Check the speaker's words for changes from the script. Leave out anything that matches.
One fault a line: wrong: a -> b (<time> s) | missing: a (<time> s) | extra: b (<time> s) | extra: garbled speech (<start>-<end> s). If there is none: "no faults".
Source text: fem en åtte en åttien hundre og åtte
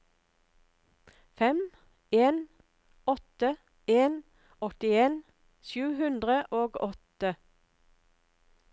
extra: sju (5.7 s)